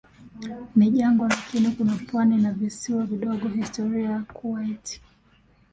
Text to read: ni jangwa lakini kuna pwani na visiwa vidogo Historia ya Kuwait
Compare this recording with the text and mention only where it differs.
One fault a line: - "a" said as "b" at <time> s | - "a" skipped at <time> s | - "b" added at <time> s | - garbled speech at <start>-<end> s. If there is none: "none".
none